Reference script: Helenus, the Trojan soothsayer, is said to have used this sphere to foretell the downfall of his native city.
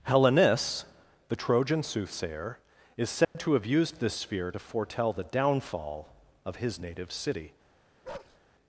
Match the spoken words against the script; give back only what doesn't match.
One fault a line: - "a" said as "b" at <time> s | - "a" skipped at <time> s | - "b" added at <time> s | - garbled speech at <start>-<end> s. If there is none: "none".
none